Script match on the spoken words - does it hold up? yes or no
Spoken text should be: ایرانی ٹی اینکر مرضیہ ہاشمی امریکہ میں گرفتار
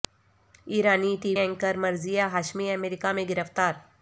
yes